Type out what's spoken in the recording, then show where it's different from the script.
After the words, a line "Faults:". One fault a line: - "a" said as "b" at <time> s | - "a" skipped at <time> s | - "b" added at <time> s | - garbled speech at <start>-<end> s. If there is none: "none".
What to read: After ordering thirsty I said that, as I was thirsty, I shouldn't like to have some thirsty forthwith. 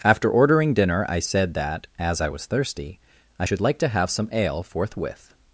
After ordering dinner I said that, as I was thirsty, I should like to have some ale forthwith.
Faults:
- "thirsty" said as "dinner" at 0.7 s
- "shouldn't" said as "should" at 3.4 s
- "thirsty" said as "ale" at 4.3 s